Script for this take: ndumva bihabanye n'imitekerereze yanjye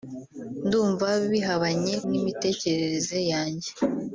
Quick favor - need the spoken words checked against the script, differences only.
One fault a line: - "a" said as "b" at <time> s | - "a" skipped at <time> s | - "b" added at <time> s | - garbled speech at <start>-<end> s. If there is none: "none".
none